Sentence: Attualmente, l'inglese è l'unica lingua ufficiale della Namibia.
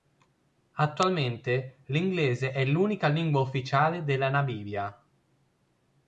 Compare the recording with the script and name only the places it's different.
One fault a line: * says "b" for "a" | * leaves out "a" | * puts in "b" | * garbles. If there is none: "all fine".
all fine